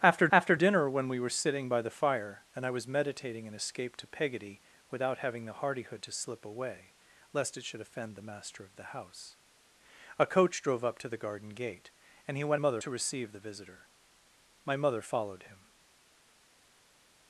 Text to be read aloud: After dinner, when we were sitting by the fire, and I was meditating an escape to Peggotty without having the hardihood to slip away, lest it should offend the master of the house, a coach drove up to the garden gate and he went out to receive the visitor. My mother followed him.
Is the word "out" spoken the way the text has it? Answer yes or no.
no